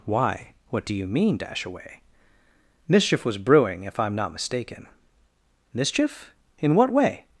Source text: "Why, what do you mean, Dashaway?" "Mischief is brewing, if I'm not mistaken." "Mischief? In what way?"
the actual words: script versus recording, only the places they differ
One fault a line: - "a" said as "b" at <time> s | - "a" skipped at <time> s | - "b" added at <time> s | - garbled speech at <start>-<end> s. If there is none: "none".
- "is" said as "was" at 3.2 s